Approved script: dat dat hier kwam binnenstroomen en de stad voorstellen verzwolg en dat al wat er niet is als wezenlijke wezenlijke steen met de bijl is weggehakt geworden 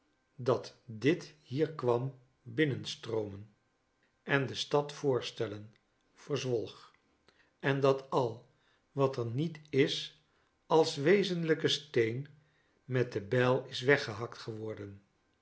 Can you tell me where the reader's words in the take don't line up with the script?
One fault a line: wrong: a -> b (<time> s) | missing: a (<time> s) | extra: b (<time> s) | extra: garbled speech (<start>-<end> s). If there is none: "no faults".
wrong: dat -> dit (0.8 s)
missing: wezenlijke (11.7 s)